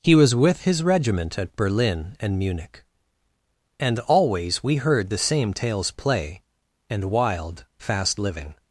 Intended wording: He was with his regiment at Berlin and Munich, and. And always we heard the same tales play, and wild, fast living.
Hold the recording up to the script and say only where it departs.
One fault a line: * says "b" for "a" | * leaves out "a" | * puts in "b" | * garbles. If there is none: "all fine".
* leaves out "And"